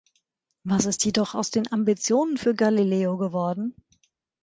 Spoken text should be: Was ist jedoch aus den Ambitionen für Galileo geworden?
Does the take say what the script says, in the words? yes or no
yes